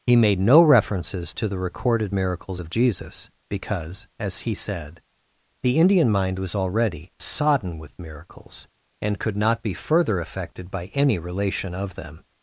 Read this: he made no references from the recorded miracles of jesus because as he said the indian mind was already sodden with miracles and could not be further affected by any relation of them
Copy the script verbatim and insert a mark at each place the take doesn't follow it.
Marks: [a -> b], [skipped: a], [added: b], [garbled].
he made no references [from -> to] the recorded miracles of jesus because as he said the indian mind was already sodden with miracles and could not be further affected by any relation of them